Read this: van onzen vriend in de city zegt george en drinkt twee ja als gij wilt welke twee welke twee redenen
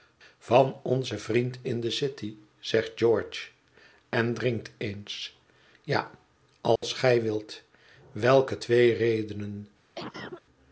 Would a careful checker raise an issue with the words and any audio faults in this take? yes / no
yes